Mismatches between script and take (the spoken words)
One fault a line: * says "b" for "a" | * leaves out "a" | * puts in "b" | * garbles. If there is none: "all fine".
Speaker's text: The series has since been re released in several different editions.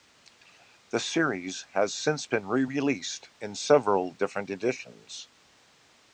all fine